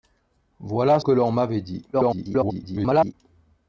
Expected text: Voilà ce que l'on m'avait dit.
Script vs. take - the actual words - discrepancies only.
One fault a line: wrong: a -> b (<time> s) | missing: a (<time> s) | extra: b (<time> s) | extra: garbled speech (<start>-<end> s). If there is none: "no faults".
missing: ce (1.0 s)
extra: garbled speech (1.9-3.1 s)